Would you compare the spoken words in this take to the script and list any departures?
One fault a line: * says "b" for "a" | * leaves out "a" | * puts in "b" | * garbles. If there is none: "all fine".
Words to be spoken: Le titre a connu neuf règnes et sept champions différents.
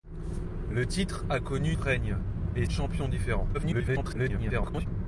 * leaves out "neuf"
* leaves out "sept"
* garbles